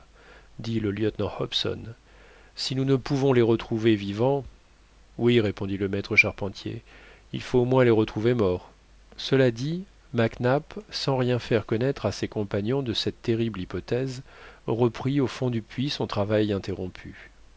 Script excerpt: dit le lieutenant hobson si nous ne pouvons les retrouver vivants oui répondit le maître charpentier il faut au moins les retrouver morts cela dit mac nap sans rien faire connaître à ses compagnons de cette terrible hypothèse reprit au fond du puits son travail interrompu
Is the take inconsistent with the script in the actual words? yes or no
no